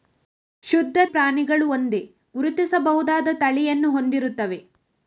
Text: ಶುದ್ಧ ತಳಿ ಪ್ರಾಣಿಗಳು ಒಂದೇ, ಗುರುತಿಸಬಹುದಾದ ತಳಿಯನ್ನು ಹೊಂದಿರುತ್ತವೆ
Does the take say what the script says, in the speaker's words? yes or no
no